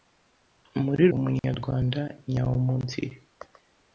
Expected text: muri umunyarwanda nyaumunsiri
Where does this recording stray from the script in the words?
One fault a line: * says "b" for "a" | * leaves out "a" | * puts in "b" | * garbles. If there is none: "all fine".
all fine